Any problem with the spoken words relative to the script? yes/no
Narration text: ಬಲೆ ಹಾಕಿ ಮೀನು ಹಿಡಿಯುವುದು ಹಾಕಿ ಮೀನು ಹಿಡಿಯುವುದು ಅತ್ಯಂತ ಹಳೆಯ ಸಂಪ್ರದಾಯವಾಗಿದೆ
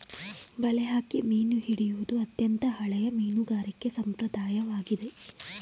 yes